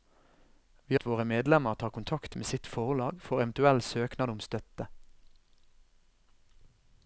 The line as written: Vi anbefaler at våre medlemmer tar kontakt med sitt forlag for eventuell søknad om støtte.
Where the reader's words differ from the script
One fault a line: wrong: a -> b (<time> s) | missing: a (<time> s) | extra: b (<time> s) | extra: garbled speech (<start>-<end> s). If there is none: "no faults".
missing: anbefaler (1.0 s)